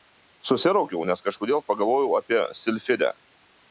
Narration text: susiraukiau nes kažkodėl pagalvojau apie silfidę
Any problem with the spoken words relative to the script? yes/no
no